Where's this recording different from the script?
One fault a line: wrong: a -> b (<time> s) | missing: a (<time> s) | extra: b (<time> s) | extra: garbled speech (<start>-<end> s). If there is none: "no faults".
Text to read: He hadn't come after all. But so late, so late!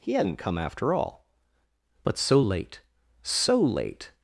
no faults